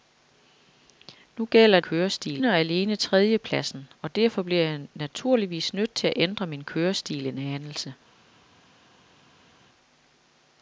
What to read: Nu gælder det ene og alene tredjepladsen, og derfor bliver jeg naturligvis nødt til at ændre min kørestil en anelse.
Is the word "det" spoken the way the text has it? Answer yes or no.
no